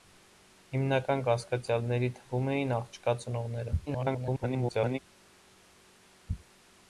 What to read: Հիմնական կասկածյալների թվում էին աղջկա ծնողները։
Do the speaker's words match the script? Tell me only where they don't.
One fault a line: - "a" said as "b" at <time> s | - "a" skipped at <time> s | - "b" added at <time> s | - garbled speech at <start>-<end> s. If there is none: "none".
- garbled speech at 3.9-5.0 s